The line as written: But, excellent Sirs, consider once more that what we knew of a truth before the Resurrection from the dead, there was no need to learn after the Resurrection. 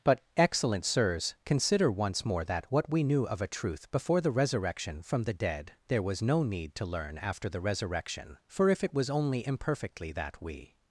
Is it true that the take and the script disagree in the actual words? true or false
true